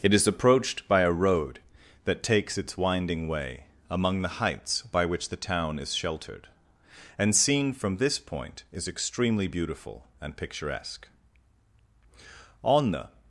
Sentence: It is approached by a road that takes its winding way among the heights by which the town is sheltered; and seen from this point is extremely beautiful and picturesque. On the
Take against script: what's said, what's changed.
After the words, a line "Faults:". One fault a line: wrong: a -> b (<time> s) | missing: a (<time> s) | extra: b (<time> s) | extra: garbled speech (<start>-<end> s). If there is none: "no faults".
It is approached by a road that takes its winding way among the heights by which the town is sheltered; and seen from this point is extremely beautiful and picturesque. On the
Faults:
no faults